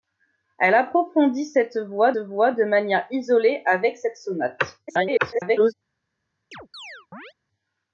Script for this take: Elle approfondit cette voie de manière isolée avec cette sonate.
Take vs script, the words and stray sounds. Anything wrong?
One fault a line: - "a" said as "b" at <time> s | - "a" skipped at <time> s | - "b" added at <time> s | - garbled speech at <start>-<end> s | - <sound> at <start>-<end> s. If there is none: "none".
- "voie" added at 2.2 s
- garbled speech at 4.9-5.7 s
- chirp at 6.5-7.3 s